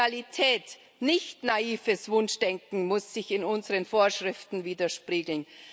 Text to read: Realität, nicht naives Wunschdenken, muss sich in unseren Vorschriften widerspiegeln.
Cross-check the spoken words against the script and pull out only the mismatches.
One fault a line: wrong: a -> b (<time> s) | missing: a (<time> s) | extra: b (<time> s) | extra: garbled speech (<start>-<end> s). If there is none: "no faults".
no faults